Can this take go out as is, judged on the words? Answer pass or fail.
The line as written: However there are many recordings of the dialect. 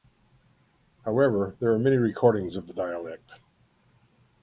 pass